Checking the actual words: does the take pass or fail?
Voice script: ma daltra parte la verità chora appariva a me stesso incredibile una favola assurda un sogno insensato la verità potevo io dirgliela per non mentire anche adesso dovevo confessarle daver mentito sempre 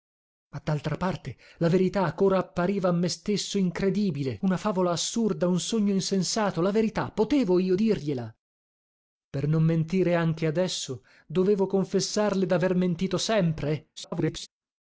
fail